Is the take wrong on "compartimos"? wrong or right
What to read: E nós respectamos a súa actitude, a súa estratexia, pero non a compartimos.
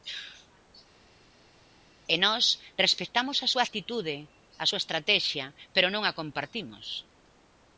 right